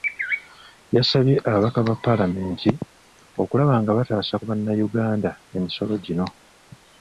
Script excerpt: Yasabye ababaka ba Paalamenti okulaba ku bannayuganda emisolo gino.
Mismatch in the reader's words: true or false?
true